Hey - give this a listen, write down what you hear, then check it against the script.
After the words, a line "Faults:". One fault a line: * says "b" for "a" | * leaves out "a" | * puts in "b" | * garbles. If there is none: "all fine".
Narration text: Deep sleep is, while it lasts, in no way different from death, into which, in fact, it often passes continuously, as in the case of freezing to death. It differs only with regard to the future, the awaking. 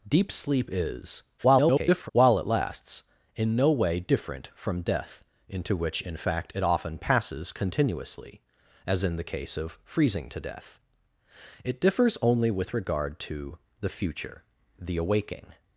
Deep sleep is, [garbled] while it lasts, in no way different from death, into which, in fact, it often passes continuously, as in the case of freezing to death. It differs only with regard to the future, the awaking.
Faults:
* garbles